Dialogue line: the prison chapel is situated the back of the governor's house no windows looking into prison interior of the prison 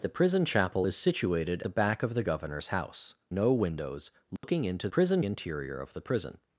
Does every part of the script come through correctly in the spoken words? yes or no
yes